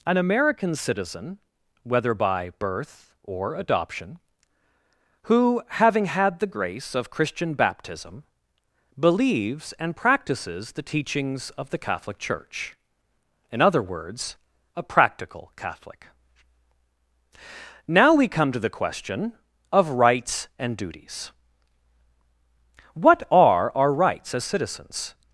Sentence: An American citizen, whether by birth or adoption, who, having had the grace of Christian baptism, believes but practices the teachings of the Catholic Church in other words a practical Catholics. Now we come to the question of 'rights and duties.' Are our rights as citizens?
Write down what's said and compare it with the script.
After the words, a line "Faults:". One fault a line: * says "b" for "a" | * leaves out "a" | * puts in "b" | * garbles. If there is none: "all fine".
An American citizen, whether by birth or adoption, who, having had the grace of Christian baptism, believes and practices the teachings of the Catholic Church in other words a practical Catholic. Now we come to the question of 'rights and duties.' What are our rights as citizens?
Faults:
* says "and" for "but"
* says "Catholic" for "Catholics"
* puts in "What"